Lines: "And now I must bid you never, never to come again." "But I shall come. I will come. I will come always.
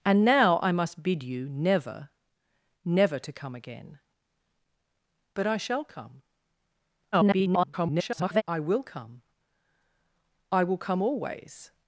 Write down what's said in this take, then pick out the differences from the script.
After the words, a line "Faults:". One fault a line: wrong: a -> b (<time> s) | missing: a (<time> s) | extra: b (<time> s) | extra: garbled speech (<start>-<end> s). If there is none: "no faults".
"And now I must bid you never, never to come again." "But I shall come. [garbled] I will come. I will come always.
Faults:
extra: garbled speech (7.1-8.4 s)